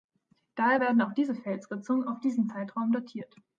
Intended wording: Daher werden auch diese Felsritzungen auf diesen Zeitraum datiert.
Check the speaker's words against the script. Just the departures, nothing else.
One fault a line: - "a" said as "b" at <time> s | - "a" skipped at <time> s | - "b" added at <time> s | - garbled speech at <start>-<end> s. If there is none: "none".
none